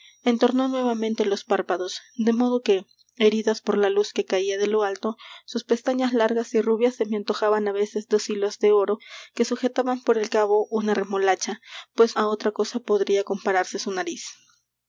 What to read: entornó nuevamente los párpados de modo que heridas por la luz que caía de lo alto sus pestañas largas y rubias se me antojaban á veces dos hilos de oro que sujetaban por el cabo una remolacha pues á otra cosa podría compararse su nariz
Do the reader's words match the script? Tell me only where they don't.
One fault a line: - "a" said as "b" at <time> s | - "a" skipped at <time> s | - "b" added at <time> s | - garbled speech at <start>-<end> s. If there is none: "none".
none